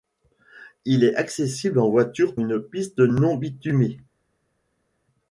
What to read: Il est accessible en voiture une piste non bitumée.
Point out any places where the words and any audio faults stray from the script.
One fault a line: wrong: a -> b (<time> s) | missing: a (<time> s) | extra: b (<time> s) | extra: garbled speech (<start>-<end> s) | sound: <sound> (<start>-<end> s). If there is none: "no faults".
no faults